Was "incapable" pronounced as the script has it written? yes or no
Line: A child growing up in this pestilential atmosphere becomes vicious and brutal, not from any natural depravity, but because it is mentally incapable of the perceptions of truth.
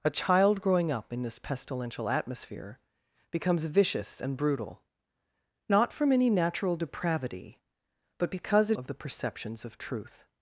no